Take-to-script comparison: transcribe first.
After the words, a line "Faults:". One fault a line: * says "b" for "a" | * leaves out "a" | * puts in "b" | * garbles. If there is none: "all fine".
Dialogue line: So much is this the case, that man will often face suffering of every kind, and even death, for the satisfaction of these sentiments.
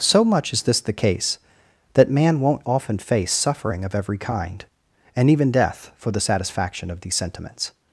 So much is this the case, that man won't often face suffering of every kind, and even death, for the satisfaction of these sentiments.
Faults:
* says "won't" for "will"